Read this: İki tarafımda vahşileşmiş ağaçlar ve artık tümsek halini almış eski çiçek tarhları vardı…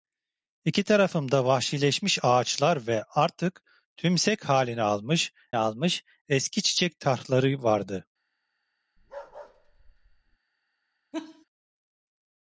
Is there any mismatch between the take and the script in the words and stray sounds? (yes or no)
yes